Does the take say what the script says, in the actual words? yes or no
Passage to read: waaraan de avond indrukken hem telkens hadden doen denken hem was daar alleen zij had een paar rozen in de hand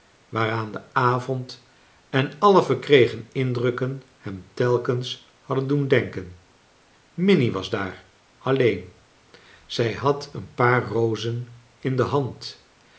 no